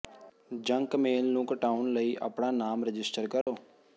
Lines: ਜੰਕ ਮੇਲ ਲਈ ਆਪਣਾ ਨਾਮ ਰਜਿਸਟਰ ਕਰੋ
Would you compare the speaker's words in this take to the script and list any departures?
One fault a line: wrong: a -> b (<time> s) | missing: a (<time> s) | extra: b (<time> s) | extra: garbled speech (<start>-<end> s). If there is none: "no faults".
extra: ਨੂੰ ਘਟਾਉਣ (1.2 s)